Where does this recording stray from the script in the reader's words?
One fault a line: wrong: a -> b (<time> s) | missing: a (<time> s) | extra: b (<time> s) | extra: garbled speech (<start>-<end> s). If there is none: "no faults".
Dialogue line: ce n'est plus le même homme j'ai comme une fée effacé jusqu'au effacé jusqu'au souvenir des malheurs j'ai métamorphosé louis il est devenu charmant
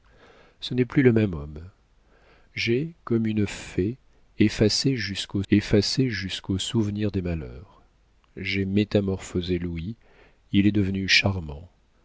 no faults